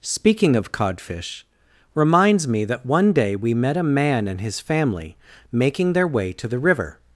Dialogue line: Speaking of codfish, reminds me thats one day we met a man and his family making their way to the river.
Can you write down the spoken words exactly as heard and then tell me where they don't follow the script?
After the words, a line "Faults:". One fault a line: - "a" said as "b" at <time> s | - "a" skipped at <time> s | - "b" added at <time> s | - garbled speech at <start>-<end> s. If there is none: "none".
Speaking of codfish, reminds me that one day we met a man and his family making their way to the river.
Faults:
- "thats" said as "that" at 2.6 s